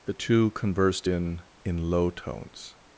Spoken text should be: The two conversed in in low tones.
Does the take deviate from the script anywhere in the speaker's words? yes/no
no